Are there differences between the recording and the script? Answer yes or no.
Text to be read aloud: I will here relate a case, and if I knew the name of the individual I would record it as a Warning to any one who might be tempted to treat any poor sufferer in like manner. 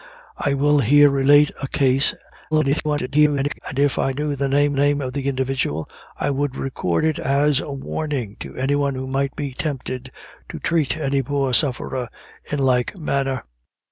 yes